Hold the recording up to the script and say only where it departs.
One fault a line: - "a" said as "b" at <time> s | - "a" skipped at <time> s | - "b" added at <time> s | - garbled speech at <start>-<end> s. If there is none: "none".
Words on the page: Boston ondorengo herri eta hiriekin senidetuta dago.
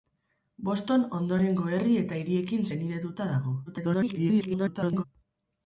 - garbled speech at 3.7-5.0 s